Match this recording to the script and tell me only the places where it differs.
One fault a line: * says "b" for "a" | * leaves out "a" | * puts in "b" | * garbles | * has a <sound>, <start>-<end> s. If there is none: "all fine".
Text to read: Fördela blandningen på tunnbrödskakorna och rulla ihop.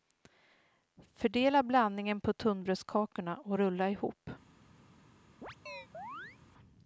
* has a chirp, 5.4-6.4 s